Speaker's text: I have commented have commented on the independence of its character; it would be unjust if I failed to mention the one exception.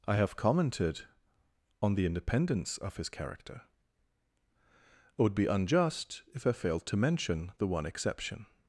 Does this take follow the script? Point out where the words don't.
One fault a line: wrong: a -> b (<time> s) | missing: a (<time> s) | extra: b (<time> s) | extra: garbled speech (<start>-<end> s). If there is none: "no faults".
missing: have commented (1.0 s)
wrong: its -> his (3.0 s)